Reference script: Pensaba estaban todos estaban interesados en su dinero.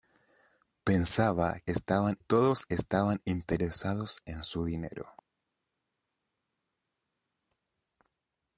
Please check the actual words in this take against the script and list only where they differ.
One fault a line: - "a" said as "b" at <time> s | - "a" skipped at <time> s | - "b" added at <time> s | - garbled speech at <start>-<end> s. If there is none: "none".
none